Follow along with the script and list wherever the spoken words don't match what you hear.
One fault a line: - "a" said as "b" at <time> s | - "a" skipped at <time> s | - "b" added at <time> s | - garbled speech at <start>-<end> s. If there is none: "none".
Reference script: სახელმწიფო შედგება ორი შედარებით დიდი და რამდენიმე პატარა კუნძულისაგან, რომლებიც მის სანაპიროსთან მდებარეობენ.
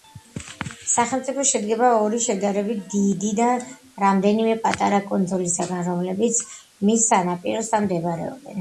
none